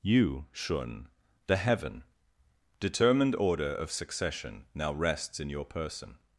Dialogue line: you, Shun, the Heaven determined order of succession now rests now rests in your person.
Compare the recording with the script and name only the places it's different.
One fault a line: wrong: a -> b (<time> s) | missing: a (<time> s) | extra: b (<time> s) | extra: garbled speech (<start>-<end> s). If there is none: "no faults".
missing: now rests (5.4 s)